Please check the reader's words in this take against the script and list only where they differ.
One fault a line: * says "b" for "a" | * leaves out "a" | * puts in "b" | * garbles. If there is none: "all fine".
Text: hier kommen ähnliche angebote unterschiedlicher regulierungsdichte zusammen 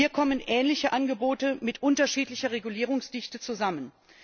* puts in "mit"